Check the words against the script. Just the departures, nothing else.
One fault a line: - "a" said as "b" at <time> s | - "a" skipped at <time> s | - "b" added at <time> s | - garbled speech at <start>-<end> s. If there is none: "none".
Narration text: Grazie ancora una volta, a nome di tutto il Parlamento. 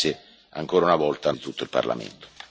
- "nome" skipped at 1.3 s